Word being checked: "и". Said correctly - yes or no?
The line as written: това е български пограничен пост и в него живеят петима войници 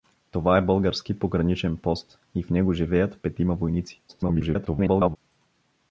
yes